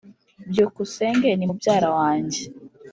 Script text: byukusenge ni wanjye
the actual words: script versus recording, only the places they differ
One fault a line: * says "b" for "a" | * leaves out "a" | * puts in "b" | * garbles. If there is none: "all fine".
* puts in "mubyara"